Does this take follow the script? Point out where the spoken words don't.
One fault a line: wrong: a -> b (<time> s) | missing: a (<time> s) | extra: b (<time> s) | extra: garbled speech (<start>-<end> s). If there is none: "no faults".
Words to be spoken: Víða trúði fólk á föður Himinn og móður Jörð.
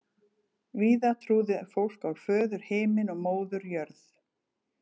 no faults